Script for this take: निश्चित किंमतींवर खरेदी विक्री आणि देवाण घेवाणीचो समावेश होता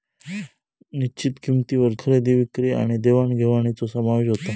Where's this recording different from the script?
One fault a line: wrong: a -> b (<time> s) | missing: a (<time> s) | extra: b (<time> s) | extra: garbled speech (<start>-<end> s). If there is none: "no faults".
no faults